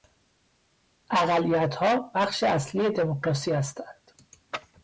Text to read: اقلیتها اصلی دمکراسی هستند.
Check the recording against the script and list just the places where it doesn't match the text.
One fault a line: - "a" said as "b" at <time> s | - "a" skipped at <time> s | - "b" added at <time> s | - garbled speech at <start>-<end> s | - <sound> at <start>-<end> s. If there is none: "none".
- "بخش" added at 2.1 s